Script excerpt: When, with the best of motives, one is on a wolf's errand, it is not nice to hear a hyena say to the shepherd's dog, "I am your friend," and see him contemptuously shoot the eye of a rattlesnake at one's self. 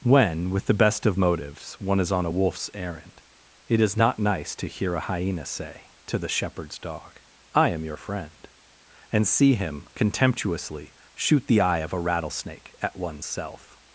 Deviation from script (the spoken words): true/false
false